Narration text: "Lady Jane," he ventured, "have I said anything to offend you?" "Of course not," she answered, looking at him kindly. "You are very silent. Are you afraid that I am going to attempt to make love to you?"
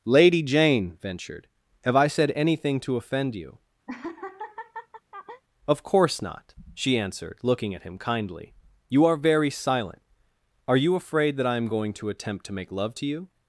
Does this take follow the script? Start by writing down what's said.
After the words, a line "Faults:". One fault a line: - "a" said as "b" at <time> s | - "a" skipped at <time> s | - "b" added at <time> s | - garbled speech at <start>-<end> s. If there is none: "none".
"Lady Jane," ventured, "have I said anything to offend you?" "Of course not," she answered, looking at him kindly. "You are very silent. Are you afraid that I am going to attempt to make love to you?"
Faults:
- "he" skipped at 1.0 s